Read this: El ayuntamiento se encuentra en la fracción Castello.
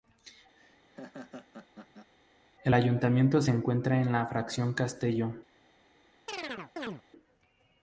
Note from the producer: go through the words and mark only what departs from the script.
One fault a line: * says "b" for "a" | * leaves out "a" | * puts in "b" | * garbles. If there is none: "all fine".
all fine